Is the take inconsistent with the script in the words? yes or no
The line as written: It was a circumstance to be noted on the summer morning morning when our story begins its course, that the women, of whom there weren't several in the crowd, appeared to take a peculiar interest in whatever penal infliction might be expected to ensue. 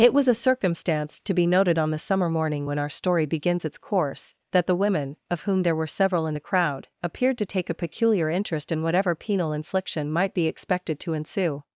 yes